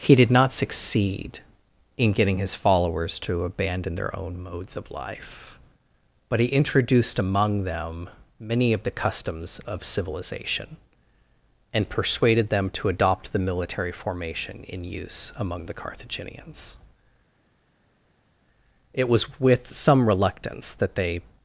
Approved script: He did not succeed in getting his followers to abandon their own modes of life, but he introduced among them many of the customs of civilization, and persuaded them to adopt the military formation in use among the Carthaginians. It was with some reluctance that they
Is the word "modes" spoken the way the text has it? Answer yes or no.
yes